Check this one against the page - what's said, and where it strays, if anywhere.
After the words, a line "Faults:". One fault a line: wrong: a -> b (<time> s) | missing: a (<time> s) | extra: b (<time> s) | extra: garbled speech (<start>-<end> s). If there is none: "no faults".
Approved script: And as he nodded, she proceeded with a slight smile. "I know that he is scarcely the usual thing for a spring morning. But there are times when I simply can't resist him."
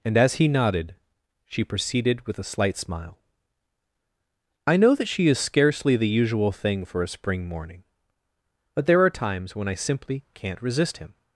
And as he nodded, she proceeded with a slight smile. "I know that she is scarcely the usual thing for a spring morning. But there are times when I simply can't resist him."
Faults:
wrong: he -> she (5.1 s)